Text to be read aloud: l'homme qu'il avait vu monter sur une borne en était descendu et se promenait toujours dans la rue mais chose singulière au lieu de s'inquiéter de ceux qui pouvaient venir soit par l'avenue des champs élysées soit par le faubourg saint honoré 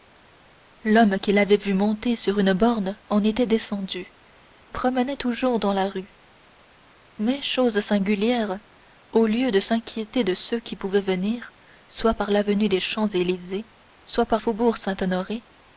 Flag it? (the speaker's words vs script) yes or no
yes